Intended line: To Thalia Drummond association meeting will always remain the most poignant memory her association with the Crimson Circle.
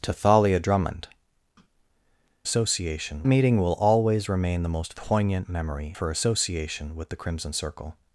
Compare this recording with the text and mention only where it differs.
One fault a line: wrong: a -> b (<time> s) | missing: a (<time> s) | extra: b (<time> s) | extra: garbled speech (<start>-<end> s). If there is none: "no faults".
no faults